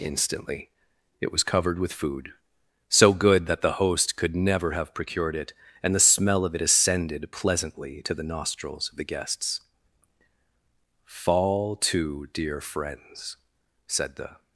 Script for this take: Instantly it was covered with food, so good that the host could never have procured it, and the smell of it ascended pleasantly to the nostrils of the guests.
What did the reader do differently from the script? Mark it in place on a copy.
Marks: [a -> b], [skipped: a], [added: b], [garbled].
Instantly it was covered with food, so good that the host could never have procured it, and the smell of it ascended pleasantly to the nostrils of the guests. [added: Fall to dear friends said the]